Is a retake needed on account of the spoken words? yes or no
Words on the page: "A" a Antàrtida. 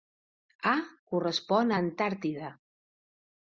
yes